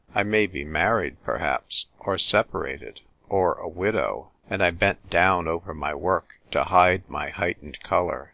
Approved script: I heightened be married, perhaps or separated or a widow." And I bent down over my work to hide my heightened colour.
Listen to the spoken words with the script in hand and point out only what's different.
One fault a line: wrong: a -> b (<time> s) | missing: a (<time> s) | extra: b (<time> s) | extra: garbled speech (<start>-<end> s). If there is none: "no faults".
wrong: heightened -> may (0.2 s)